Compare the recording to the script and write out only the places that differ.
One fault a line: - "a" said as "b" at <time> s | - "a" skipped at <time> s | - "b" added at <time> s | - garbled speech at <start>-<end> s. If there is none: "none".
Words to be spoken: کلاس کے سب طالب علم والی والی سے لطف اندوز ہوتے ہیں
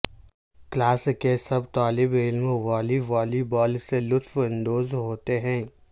- "بال" added at 3.5 s